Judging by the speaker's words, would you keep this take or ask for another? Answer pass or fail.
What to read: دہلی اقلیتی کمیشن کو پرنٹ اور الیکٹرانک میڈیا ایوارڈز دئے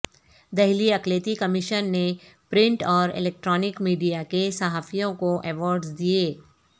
fail